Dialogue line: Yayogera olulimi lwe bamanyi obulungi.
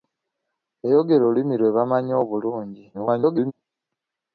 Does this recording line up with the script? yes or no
no